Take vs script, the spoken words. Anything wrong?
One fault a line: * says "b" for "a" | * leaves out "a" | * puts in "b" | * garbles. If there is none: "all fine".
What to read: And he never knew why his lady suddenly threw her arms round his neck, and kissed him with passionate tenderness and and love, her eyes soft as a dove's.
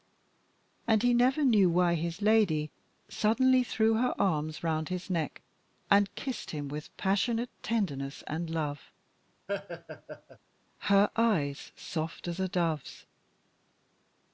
* leaves out "and"